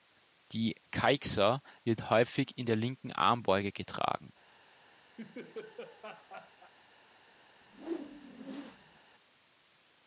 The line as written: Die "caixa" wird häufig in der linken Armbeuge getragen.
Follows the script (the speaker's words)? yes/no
yes